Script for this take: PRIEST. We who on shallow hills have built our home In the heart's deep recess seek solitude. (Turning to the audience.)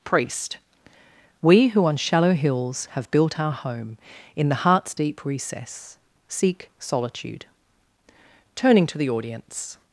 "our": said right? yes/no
yes